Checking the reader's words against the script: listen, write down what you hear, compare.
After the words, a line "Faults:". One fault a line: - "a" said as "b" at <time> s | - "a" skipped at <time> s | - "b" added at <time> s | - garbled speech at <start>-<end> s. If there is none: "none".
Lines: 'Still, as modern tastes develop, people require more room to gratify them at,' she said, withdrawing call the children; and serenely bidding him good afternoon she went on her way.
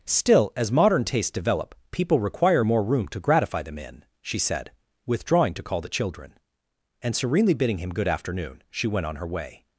'Still, as modern tastes develop, people require more room to gratify them in,' she said, withdrawing to call the children; and serenely bidding him good afternoon she went on her way.
Faults:
- "at" said as "in" at 3.8 s
- "to" added at 5.5 s